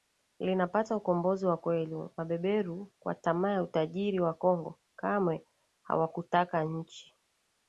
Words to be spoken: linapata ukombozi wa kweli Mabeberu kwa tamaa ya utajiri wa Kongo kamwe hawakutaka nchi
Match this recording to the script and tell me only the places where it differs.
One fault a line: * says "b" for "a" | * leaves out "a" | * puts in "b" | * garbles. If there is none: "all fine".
all fine